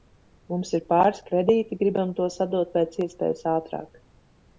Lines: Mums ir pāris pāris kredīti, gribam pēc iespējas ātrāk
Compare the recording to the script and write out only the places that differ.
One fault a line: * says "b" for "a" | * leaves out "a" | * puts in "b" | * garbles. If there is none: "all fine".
* leaves out "pāris"
* puts in "tos atdot"